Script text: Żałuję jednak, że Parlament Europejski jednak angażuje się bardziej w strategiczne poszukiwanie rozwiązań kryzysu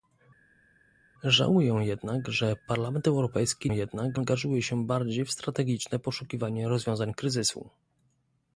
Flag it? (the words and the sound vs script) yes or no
no